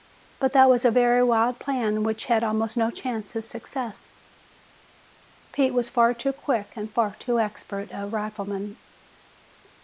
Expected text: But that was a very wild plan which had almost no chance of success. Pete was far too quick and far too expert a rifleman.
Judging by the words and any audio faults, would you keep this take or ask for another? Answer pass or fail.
pass